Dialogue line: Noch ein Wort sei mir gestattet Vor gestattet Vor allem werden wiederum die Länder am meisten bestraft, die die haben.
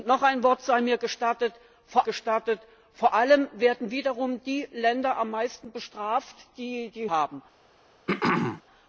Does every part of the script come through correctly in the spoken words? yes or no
yes